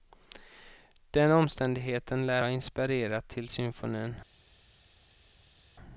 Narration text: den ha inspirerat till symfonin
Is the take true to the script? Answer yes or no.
no